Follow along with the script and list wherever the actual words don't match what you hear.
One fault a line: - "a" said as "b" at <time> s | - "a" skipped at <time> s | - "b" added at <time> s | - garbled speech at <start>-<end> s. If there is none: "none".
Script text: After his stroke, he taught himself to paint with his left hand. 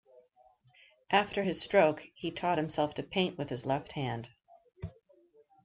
none